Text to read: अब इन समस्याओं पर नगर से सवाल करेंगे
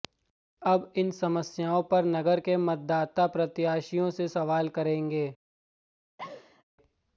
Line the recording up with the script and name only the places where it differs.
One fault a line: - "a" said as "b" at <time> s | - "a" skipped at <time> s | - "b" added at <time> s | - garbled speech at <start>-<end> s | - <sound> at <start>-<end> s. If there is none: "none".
- "के मतदाता प्रत्याशियों" added at 2.4 s
- laugh at 6.2-6.6 s